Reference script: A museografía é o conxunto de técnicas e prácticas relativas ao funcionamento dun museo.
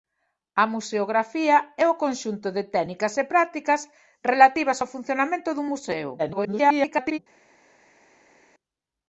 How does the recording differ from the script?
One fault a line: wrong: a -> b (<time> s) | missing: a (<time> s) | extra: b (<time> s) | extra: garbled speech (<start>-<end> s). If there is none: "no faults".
extra: garbled speech (6.2-7.2 s)